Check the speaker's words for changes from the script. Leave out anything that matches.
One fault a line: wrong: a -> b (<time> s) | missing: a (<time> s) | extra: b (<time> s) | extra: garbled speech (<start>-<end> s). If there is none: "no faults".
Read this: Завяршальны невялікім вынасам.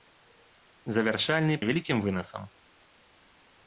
no faults